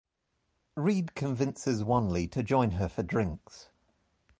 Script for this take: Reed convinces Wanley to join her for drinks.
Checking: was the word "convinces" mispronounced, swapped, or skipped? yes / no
no